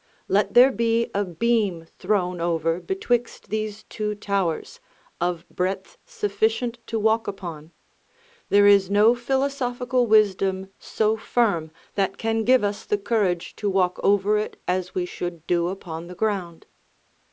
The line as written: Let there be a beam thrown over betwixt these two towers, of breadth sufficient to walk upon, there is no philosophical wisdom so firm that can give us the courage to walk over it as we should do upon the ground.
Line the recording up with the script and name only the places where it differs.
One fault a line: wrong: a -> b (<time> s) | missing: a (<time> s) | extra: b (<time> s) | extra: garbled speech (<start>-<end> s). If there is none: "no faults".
no faults